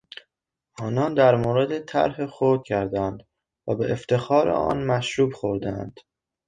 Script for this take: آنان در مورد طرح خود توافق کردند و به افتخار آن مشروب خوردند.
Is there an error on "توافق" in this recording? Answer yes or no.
yes